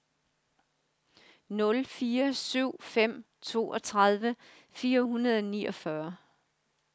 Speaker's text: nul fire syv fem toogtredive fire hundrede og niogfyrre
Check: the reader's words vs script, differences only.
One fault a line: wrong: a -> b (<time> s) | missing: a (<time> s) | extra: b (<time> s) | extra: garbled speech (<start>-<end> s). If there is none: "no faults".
no faults